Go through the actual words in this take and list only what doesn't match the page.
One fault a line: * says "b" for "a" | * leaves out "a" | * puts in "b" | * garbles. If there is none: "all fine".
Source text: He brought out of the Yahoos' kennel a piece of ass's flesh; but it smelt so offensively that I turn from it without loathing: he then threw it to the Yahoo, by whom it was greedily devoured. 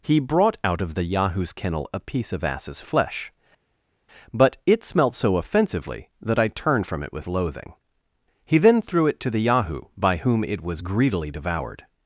* says "turned" for "turn"
* says "with" for "without"